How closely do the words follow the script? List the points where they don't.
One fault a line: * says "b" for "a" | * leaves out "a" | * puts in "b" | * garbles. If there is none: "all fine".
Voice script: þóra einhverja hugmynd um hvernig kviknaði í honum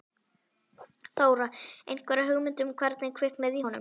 all fine